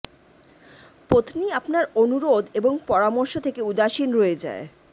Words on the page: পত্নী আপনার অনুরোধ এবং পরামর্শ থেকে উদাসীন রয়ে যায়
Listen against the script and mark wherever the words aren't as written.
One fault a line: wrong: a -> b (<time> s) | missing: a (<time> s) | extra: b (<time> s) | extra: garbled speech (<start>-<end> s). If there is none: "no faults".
no faults